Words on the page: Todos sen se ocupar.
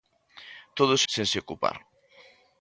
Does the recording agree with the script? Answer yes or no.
yes